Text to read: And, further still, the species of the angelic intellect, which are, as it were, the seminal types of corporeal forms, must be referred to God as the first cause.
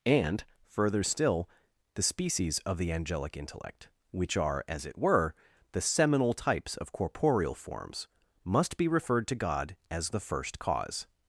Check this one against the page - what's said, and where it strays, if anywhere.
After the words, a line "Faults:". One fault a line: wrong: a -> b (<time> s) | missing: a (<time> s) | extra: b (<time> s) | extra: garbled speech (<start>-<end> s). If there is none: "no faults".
And, further still, the species of the angelic intellect, which are, as it were, the seminal types of corporeal forms, must be referred to God as the first cause.
Faults:
no faults